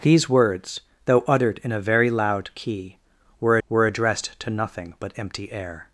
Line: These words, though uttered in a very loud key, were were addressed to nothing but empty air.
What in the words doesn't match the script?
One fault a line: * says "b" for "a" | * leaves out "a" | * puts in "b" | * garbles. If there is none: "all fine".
all fine